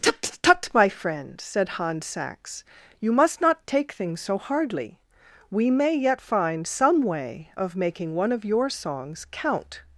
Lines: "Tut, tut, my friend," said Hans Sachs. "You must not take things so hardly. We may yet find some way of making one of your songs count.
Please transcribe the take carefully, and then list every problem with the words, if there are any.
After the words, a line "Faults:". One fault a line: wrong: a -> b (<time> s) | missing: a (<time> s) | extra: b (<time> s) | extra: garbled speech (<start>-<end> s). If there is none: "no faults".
"Tut, tut, my friend," said Hans Sachs. "You must not take things so hardly. We may yet find some way of making one of your songs count.
Faults:
no faults